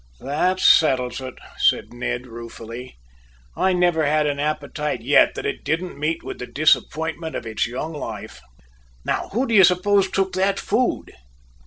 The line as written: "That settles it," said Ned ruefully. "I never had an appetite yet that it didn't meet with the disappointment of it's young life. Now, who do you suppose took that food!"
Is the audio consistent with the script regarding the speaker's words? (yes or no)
yes